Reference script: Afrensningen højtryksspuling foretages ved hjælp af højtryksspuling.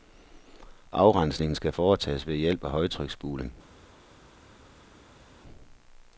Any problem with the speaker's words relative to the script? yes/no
yes